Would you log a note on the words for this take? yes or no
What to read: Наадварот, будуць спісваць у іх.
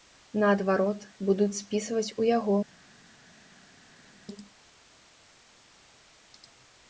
yes